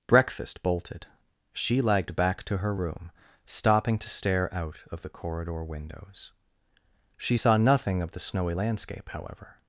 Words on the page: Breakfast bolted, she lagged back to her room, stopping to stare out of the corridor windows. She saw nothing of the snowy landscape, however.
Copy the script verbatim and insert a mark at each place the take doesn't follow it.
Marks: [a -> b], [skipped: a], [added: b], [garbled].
Breakfast bolted, she lagged back to her room, stopping to stare out of the corridor windows. She saw nothing of the snowy landscape, however.